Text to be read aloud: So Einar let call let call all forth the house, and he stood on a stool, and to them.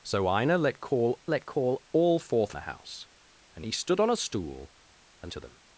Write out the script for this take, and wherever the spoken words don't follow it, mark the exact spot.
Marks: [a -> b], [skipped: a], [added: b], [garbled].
So Einar let call let call all forth the house, and he stood on a stool, and to them.